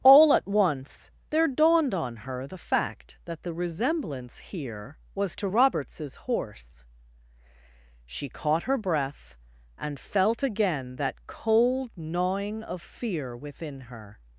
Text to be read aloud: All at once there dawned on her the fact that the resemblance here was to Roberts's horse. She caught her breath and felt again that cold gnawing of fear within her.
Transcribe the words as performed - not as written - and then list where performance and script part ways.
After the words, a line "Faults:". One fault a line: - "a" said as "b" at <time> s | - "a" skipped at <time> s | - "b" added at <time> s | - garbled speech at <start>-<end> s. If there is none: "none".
All at once there dawned on her the fact that the resemblance here was to Roberts's horse. She caught her breath and felt again that cold gnawing of fear within her.
Faults:
none